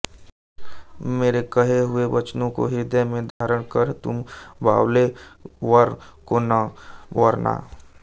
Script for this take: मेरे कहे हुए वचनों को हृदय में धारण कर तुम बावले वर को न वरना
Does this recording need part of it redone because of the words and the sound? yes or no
yes